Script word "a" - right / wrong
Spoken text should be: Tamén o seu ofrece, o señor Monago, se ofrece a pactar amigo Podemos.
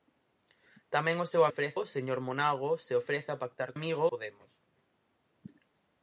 right